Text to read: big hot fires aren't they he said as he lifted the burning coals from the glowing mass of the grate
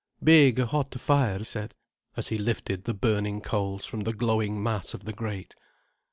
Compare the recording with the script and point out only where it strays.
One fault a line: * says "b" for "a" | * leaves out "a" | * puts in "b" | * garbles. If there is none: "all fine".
* leaves out "aren't they he"